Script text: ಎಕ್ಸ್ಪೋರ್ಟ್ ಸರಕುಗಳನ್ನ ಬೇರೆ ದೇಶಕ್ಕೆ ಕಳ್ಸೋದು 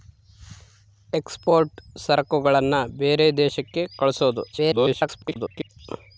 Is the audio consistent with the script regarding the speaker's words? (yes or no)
no